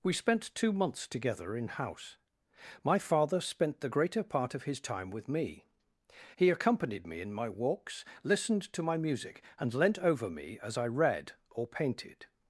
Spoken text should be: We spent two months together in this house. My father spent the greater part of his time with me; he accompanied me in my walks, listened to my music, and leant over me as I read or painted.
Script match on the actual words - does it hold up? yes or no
no